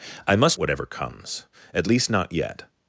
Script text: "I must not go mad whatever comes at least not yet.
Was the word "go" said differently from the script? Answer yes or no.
yes